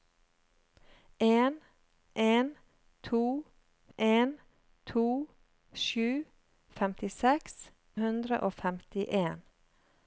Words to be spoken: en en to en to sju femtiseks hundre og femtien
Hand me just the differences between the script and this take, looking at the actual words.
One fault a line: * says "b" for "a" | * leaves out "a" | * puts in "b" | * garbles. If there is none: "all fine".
all fine